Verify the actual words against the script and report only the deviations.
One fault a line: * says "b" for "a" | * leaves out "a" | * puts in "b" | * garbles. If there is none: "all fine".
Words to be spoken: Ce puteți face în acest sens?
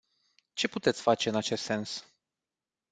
all fine